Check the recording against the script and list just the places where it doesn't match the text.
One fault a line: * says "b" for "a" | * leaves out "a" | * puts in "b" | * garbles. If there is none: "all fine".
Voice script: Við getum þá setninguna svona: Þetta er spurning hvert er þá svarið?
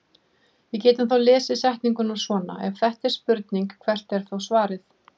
* puts in "lesið"
* puts in "Ef"